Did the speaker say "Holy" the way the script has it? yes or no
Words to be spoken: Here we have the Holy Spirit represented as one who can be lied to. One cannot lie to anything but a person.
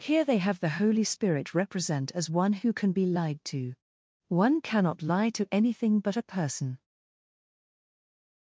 yes